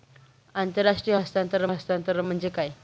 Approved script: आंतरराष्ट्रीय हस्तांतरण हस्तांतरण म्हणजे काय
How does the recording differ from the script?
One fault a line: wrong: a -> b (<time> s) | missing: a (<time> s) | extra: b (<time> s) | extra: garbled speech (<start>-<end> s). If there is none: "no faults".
no faults